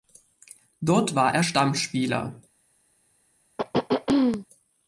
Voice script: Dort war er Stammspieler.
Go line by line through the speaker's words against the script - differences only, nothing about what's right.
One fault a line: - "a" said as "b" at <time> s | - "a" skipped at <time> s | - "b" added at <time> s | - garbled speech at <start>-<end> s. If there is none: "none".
none